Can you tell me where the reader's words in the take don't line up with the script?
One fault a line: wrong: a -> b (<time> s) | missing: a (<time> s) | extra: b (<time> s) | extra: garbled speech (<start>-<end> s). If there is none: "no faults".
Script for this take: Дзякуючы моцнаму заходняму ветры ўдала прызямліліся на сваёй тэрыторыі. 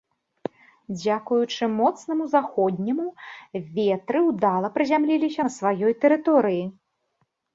no faults